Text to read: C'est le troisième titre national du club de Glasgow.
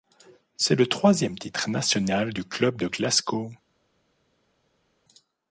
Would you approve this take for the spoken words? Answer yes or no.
yes